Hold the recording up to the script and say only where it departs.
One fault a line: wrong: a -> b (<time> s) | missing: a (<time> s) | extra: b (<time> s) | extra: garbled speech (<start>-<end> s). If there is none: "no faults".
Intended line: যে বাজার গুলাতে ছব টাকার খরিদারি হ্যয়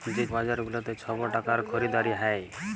no faults